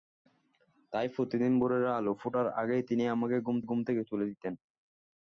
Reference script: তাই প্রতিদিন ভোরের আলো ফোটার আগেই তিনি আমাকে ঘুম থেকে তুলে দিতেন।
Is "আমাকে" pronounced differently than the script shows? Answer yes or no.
no